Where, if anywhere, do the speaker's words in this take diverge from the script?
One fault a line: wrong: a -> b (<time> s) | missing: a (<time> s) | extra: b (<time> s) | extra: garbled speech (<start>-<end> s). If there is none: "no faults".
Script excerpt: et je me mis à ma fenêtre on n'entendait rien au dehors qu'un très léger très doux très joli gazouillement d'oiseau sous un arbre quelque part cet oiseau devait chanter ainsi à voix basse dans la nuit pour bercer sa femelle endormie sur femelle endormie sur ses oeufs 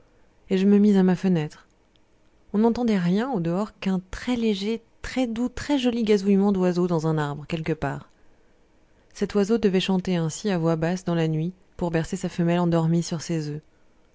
wrong: sous -> dans (6.9 s)
missing: femelle endormie sur (13.2 s)